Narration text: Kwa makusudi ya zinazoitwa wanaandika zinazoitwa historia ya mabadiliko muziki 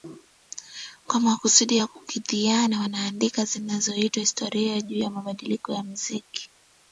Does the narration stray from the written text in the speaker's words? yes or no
yes